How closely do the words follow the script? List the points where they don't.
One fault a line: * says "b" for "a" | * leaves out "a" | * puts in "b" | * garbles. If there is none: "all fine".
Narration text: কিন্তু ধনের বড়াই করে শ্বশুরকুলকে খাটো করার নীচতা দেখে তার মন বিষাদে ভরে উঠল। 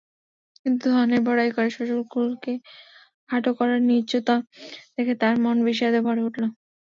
all fine